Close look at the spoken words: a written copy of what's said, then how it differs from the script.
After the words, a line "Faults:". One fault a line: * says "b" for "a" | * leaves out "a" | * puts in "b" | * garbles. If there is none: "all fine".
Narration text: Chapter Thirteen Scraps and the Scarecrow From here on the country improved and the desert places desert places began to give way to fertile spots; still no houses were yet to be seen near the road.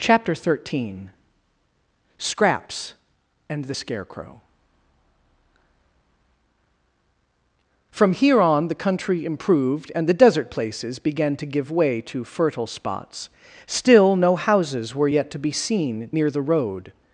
Chapter Thirteen Scraps and the Scarecrow From here on the country improved and the desert places began to give way to fertile spots; still no houses were yet to be seen near the road.
Faults:
* leaves out "desert places"